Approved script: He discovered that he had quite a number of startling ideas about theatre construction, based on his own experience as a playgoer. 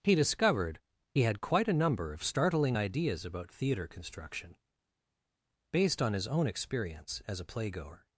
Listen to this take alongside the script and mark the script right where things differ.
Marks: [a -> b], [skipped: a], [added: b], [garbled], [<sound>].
He discovered [skipped: that] he had quite a number of startling ideas about theatre construction, based on his own experience as a playgoer.